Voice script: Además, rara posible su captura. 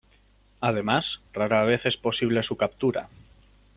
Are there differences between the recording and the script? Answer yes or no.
yes